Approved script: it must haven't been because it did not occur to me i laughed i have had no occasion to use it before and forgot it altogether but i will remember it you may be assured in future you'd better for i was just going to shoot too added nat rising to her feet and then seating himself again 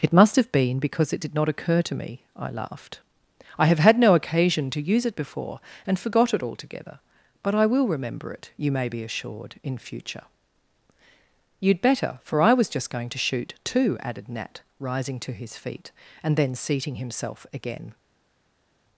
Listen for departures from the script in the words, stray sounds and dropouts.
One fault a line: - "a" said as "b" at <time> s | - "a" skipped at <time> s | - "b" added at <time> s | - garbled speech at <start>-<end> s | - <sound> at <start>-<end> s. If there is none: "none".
- "haven't" said as "have" at 0.3 s
- "her" said as "his" at 15.3 s